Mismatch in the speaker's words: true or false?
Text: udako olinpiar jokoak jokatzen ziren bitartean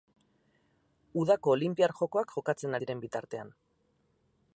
false